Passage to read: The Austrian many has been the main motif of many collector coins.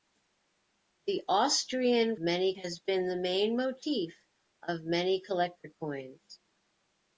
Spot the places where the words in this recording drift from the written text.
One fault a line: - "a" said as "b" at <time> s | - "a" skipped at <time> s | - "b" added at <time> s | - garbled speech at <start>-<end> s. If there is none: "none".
none